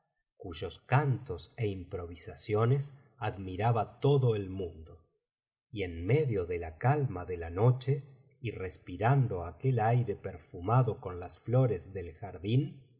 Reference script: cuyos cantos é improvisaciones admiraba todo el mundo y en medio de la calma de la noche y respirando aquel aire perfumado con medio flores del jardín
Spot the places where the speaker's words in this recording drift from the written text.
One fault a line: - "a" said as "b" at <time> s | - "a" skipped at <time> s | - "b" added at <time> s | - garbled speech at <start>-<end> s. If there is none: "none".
- "medio" said as "las" at 11.2 s